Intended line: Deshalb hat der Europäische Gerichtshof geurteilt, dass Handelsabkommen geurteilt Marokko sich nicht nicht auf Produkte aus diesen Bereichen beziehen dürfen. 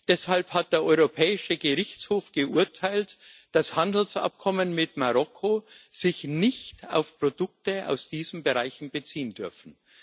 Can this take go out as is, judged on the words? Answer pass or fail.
fail